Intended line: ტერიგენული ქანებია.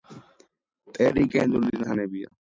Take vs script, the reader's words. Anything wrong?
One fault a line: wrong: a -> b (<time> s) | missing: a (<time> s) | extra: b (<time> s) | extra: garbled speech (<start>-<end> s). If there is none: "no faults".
no faults